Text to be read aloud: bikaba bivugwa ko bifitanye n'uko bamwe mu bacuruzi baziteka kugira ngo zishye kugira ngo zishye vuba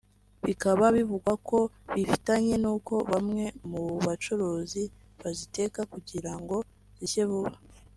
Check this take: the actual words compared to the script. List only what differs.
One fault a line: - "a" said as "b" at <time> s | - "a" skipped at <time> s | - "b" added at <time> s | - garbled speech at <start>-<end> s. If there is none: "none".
- "kugira ngo zishye" skipped at 7.2 s